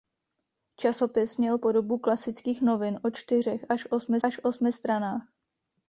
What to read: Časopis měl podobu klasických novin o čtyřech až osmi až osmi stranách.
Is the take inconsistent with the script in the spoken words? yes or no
no